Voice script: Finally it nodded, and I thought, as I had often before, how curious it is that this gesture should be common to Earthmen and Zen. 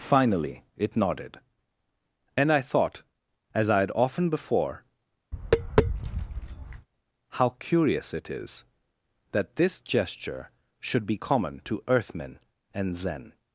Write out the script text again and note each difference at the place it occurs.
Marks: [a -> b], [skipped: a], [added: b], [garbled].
Finally it nodded, and I thought, as I had often before, how curious it is that this gesture should be common to Earthmen and Zen.